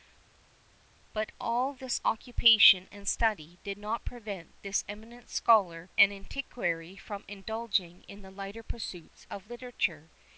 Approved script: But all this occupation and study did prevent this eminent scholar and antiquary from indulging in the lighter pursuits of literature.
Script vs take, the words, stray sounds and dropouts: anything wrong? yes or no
yes